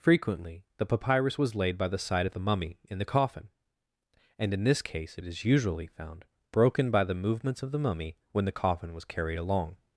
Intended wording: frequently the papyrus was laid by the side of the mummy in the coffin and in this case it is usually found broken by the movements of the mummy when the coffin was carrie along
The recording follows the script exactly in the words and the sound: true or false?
false